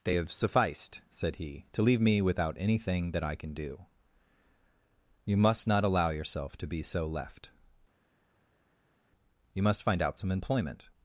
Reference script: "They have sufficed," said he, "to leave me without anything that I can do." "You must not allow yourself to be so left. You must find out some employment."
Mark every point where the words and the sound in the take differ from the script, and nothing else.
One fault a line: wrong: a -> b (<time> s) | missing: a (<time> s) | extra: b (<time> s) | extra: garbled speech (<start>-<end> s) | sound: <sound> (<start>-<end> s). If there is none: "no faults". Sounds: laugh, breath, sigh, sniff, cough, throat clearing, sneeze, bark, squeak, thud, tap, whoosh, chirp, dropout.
no faults